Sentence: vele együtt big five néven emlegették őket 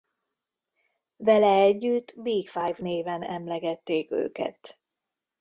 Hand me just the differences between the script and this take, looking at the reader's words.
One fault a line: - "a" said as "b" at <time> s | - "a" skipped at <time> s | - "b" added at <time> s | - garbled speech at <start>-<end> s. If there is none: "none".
none